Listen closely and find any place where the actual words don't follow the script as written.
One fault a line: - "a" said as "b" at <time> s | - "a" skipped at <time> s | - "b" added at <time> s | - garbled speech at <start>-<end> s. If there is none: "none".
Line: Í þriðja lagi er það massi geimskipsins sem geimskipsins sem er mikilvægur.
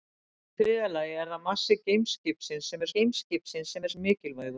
none